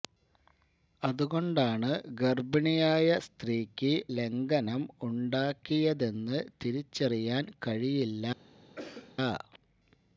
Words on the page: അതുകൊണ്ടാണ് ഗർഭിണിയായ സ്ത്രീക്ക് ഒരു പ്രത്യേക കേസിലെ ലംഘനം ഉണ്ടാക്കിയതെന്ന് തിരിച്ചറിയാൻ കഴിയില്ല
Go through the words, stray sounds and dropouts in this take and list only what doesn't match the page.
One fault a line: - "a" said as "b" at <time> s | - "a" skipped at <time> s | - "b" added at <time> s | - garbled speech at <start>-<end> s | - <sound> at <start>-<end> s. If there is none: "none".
- "ഒരു പ്രത്യേക കേസിലെ" skipped at 3.9 s
- cough at 8.8-9.2 s